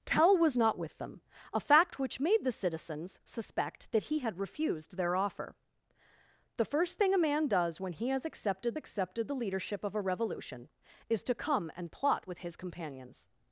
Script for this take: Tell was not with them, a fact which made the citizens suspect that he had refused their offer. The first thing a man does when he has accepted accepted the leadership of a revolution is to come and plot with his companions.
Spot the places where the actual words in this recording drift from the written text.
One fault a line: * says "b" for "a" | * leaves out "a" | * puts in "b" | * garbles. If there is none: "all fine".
all fine